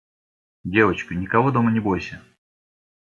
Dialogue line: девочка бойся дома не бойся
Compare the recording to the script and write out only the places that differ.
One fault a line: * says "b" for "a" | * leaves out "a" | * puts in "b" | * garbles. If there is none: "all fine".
* says "никого" for "бойся"